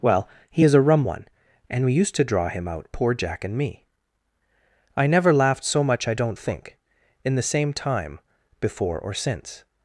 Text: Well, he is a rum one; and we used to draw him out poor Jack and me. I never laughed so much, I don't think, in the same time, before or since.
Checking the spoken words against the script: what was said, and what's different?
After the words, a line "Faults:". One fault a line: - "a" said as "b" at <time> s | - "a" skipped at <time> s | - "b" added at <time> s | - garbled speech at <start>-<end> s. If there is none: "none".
Well, he is a rum one; and we used to draw him out poor Jack and me. I never laughed so much, I don't think, in the same time, before or since.
Faults:
none